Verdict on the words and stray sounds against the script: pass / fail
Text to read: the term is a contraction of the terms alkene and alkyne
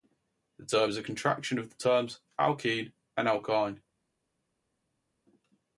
pass